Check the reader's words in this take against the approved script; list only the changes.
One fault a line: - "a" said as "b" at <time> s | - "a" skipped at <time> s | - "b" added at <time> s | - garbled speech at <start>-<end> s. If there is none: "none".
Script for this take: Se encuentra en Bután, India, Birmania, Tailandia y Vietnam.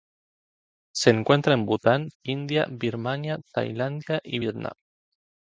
none